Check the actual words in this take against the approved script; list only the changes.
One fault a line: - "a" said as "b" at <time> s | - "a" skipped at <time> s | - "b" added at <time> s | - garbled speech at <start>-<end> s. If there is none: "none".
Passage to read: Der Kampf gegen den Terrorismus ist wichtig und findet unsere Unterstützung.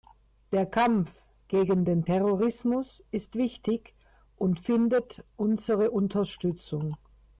none